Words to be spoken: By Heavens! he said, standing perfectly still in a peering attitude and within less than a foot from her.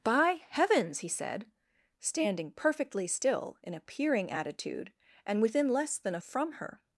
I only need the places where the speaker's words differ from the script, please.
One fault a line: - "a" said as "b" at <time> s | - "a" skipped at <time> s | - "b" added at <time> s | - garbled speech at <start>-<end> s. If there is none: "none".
- "foot" skipped at 6.2 s